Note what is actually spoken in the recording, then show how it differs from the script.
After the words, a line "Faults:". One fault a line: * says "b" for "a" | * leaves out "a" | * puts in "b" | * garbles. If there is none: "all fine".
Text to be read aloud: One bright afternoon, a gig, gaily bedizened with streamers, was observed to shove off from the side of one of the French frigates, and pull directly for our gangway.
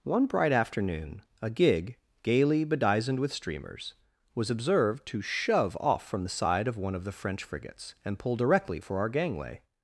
One bright afternoon, a gig, gaily bedizened with streamers, was observed to shove off from the side of one of the French frigates, and pull directly for our gangway.
Faults:
all fine